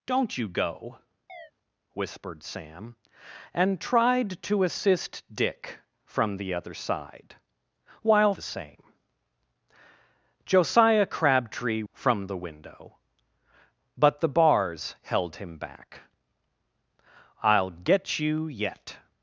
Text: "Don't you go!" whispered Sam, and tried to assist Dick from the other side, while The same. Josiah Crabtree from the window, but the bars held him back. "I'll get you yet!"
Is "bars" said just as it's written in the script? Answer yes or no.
yes